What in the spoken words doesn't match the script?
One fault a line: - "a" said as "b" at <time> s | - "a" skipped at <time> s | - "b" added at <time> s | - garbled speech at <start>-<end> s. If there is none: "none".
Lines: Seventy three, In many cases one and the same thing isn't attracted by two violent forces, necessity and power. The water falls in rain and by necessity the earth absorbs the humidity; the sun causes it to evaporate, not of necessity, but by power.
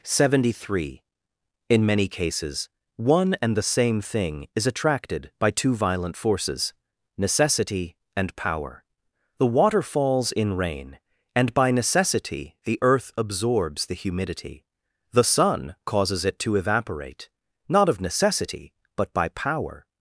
- "isn't" said as "is" at 4.5 s